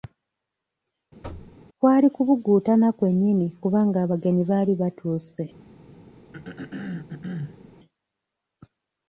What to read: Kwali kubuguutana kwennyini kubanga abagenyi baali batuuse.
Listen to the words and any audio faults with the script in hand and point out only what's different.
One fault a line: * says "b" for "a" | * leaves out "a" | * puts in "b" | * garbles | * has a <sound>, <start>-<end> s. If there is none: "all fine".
* has a thud, 1.2-1.6 s
* has a throat clearing, 6.3-7.6 s